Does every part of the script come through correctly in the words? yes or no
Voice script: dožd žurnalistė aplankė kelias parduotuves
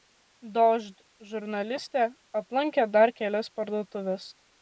no